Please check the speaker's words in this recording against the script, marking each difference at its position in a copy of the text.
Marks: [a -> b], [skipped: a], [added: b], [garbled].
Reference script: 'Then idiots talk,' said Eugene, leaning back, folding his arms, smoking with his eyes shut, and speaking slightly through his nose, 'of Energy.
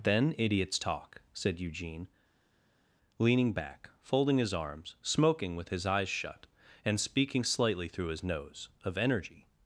'Then idiots talk,' said Eugene, leaning back, folding his arms, smoking with his eyes shut, and speaking slightly through his nose, 'of Energy.